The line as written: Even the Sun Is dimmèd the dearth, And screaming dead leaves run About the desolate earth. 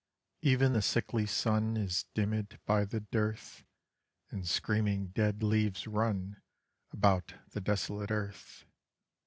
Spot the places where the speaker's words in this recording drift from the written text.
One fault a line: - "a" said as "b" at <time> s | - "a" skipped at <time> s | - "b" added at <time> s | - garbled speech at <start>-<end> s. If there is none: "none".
- "sickly" added at 0.8 s
- "by" added at 2.7 s